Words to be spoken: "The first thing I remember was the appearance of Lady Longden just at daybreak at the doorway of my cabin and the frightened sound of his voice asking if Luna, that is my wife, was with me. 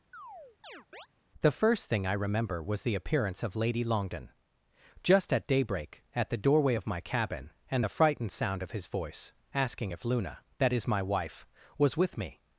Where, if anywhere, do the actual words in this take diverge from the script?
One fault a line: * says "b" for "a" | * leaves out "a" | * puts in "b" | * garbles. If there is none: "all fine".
all fine